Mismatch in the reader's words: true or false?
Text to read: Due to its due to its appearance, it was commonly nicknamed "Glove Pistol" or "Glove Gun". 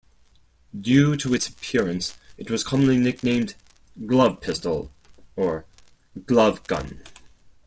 true